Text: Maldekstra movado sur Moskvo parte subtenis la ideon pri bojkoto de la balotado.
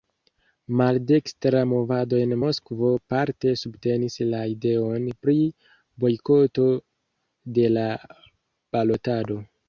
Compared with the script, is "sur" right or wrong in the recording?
wrong